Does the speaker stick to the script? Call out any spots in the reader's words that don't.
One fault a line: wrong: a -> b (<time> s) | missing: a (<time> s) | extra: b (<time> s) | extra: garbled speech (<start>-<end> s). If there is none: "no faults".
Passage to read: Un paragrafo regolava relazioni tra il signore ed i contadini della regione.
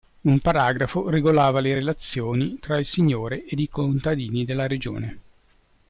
extra: le (1.6 s)